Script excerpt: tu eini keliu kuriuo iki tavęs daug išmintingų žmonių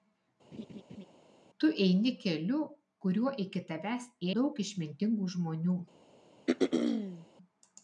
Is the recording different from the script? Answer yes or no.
no